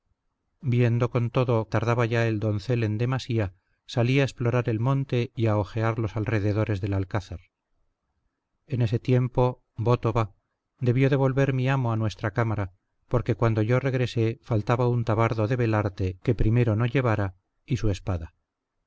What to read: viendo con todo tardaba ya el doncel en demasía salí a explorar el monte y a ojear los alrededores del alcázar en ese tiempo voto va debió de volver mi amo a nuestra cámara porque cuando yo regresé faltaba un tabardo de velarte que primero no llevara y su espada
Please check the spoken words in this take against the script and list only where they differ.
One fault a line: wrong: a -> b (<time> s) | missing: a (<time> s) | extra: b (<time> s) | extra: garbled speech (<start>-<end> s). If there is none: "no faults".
no faults